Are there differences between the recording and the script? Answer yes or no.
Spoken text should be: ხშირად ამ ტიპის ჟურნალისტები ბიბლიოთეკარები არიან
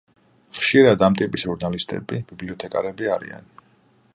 no